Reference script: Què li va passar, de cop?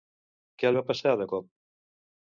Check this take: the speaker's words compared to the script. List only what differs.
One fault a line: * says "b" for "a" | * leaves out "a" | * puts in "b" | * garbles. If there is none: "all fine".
* leaves out "li"